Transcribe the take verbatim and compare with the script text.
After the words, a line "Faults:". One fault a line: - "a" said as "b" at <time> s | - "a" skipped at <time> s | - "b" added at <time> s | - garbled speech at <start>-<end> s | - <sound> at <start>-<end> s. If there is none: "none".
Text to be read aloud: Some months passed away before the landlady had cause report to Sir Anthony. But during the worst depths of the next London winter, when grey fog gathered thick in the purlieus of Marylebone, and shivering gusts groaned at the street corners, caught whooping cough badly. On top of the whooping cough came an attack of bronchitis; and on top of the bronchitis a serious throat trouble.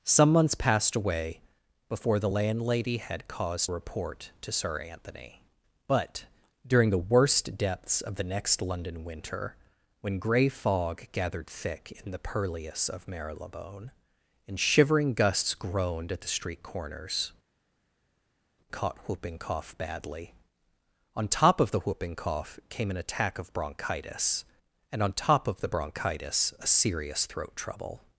Some months passed away before the landlady had cause report to Sir Anthony. But during the worst depths of the next London winter, when grey fog gathered thick in the purlieus of Marylebone, and shivering gusts groaned at the street corners, caught whooping cough badly. On top of the whooping cough came an attack of bronchitis; and on top of the bronchitis a serious throat trouble.
Faults:
none